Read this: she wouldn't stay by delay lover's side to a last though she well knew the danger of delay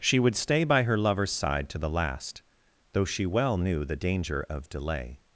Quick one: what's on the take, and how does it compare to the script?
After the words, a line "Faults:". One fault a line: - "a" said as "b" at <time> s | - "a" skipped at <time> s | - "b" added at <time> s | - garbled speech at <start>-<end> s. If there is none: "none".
she would stay by her lover's side to the last though she well knew the danger of delay
Faults:
- "wouldn't" said as "would" at 0.2 s
- "delay" said as "her" at 0.8 s
- "a" said as "the" at 1.8 s